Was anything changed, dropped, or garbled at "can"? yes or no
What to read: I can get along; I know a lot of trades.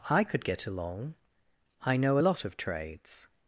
yes